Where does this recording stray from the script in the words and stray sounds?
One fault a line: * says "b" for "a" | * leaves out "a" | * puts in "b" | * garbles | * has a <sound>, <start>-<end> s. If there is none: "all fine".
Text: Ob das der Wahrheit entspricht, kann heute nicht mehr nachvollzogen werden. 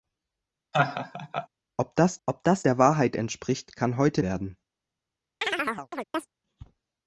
* has a laugh, 0.7-1.5 s
* puts in "ob das"
* leaves out "nicht mehr nachvollzogen"
* has a chirp, 5.4-6.3 s